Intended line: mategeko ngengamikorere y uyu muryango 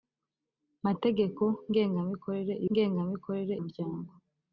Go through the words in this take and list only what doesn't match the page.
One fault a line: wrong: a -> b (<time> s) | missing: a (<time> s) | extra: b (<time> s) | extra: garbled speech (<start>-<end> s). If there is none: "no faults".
wrong: uyu -> ngengamikorere (2.7 s)